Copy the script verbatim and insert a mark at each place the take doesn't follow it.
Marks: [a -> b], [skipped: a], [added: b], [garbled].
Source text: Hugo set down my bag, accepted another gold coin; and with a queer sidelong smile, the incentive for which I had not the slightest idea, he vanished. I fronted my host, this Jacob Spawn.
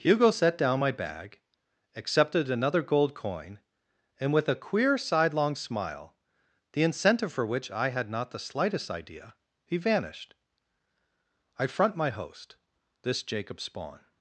Hugo set down my bag, accepted another gold coin; and with a queer sidelong smile, the incentive for which I had not the slightest idea, he vanished. I [fronted -> front] my host, this Jacob Spawn.